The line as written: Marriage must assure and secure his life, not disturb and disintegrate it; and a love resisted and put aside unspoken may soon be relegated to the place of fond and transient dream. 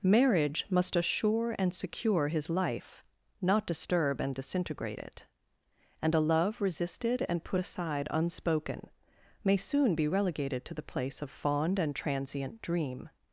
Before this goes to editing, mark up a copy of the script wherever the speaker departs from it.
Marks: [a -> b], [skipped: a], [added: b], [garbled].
Marriage must assure and secure his life, not disturb and disintegrate it; and a love resisted and put aside unspoken may soon be relegated to the place of fond and transient dream.